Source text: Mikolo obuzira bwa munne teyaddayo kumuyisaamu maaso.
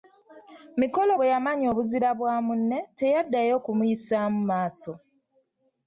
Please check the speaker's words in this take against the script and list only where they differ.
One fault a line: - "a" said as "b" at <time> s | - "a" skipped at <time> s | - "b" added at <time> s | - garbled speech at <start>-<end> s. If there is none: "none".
- "bwe yamanya" added at 1.1 s